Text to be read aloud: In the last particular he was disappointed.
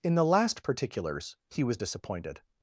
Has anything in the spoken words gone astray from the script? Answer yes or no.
yes